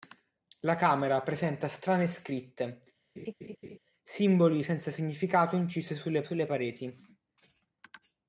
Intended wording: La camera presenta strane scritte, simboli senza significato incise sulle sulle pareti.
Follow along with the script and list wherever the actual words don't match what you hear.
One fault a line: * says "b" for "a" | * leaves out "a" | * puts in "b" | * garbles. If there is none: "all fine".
all fine